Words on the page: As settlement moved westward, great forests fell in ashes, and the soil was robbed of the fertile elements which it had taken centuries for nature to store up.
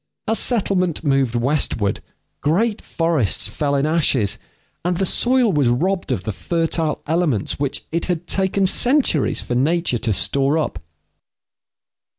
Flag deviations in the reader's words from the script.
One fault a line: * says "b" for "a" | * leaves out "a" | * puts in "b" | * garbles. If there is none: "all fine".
all fine